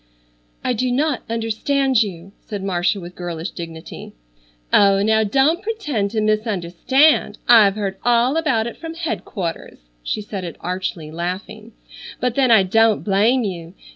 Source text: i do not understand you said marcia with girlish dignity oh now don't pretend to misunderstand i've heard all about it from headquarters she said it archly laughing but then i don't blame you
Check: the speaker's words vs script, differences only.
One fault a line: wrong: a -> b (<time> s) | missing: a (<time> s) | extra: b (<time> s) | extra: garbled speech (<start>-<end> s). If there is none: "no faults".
no faults